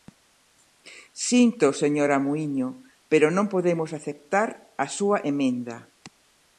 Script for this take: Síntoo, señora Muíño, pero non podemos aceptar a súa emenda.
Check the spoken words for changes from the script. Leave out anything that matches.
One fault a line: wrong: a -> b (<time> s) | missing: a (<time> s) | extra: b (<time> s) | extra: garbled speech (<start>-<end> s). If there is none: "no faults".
no faults